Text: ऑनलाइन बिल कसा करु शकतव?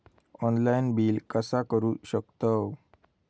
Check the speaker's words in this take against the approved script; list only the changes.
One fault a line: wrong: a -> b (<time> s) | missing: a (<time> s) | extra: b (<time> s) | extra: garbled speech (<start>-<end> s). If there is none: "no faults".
no faults